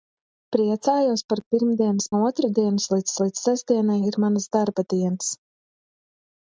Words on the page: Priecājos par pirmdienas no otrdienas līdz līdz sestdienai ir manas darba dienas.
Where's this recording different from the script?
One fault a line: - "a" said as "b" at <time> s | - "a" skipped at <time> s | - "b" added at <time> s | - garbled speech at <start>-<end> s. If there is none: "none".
none